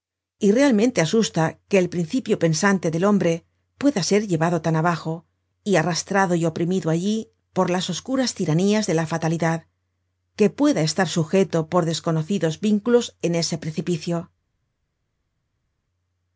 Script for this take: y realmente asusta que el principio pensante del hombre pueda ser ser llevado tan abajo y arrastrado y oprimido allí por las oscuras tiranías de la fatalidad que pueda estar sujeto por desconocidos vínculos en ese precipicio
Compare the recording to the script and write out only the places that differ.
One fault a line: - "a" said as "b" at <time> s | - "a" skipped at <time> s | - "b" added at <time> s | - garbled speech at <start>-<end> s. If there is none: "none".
- "ser" skipped at 4.3 s